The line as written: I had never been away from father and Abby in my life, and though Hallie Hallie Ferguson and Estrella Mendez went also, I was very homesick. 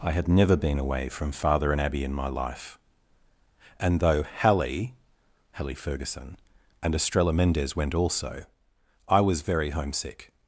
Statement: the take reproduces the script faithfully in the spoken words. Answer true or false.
true